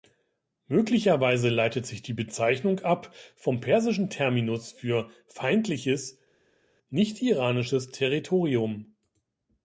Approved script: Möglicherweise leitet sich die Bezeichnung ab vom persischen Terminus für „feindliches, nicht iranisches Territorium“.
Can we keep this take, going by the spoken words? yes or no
yes